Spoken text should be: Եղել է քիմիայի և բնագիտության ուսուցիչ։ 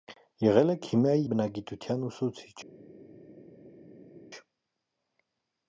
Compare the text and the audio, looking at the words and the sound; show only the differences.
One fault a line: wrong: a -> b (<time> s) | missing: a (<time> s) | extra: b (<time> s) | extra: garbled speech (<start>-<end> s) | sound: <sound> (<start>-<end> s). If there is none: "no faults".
missing: և (1.3 s)